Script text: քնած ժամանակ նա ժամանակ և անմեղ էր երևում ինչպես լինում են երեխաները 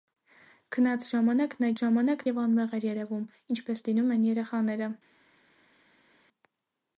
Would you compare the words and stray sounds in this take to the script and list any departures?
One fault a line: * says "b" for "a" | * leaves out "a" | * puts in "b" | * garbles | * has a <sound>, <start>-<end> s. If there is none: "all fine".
all fine